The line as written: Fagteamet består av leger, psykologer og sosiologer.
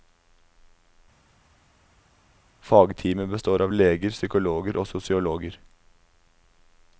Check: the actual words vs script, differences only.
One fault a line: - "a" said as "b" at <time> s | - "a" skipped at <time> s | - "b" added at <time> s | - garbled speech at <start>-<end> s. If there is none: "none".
none